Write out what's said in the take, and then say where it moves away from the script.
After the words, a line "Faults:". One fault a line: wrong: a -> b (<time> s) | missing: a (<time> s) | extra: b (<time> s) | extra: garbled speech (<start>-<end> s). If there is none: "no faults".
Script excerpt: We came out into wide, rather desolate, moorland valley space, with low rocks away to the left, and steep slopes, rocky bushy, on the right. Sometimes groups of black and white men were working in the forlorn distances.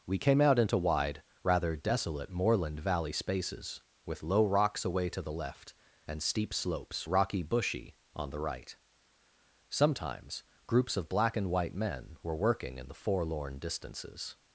We came out into wide, rather desolate, moorland valley spaces, with low rocks away to the left, and steep slopes, rocky bushy, on the right. Sometimes groups of black and white men were working in the forlorn distances.
Faults:
wrong: space -> spaces (3.1 s)